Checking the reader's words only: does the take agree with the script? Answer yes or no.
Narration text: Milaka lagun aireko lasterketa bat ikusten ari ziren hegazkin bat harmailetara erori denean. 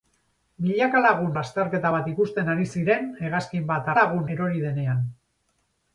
no